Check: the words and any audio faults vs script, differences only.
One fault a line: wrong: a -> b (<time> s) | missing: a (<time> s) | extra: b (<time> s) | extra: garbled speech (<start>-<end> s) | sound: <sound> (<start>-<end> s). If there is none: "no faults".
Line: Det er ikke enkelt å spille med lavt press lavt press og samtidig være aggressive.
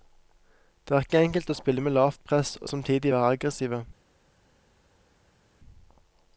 missing: lavt press (2.5 s)